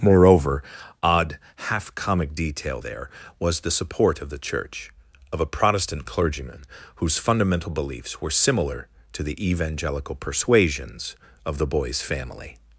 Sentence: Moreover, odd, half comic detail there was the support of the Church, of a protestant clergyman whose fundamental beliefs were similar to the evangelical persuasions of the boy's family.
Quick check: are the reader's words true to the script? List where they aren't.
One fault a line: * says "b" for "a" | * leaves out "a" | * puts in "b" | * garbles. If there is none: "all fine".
all fine